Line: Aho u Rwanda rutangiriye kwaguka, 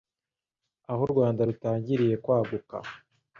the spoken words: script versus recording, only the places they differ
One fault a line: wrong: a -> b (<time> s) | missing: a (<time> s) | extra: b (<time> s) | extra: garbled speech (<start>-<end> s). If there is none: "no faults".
no faults